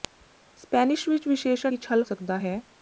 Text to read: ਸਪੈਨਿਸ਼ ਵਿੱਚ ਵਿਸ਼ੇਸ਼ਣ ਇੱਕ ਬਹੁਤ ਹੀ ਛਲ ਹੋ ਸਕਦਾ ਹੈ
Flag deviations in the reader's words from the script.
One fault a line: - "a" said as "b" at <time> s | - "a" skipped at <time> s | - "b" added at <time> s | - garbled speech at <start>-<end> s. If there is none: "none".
- "ਇੱਕ ਬਹੁਤ" skipped at 1.7 s
- "ਹੋ" skipped at 2.0 s